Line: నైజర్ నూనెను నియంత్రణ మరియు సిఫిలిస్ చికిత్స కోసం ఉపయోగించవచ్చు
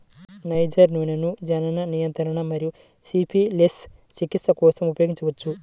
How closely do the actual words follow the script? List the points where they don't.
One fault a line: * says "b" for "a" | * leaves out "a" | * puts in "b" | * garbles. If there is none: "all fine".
* puts in "జనన"